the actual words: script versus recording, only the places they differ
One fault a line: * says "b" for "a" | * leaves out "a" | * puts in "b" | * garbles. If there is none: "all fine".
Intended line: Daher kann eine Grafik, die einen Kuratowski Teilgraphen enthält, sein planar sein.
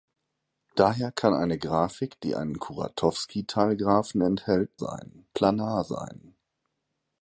all fine